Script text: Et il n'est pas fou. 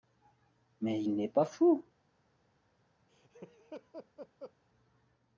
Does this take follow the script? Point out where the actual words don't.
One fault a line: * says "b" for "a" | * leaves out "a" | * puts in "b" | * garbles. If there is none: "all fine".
* says "Mais" for "Et"